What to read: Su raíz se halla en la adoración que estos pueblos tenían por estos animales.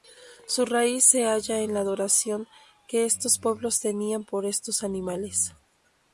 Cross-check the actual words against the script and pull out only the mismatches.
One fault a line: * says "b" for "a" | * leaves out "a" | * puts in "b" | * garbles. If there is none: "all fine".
all fine